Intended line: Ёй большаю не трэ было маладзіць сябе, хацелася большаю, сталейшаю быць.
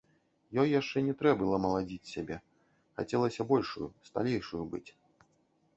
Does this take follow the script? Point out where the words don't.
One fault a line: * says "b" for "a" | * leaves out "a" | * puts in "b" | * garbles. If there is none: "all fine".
* says "яшчэ" for "большаю"